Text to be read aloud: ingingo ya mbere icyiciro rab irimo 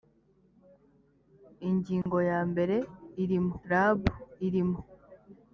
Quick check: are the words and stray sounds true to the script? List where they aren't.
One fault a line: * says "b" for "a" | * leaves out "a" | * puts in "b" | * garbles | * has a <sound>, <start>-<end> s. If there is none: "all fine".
* has a dropout, 2.0-2.1 s
* says "irimo" for "icyiciro"